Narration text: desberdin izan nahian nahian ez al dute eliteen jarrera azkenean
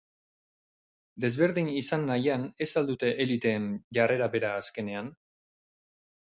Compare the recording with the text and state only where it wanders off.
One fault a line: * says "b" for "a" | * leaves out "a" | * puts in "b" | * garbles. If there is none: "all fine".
* leaves out "nahian"
* puts in "bera"